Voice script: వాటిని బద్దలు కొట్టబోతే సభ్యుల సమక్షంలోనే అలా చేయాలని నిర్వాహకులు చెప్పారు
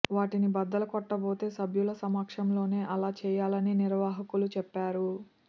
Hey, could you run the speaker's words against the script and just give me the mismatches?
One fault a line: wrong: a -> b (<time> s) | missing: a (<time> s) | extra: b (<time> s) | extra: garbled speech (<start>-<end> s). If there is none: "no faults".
no faults